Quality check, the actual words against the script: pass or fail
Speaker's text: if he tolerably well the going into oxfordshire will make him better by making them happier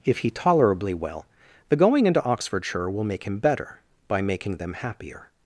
pass